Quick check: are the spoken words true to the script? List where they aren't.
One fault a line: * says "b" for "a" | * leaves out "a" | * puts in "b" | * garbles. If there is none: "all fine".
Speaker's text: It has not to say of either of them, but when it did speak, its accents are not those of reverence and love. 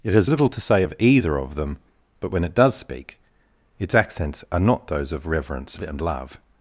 * says "little" for "not"
* says "does" for "did"